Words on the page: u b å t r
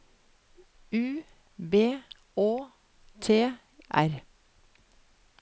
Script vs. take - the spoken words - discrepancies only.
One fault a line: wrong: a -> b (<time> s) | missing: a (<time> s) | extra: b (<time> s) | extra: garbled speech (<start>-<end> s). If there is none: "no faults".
no faults